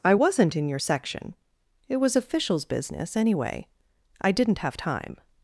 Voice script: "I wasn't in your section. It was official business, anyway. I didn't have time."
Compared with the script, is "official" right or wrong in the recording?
wrong